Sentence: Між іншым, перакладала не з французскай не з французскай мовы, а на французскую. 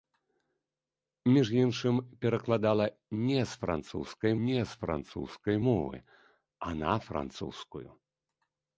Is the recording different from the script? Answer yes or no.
no